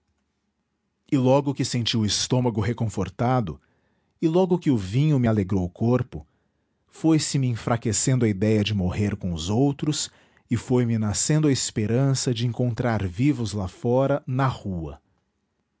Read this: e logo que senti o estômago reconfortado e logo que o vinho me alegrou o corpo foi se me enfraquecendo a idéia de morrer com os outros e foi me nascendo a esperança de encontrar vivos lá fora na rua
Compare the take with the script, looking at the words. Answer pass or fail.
pass